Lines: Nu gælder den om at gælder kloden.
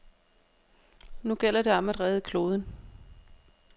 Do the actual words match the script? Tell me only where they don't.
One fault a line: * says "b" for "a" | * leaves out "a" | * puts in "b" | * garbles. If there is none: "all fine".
* says "det" for "den"
* says "redde" for "gælder"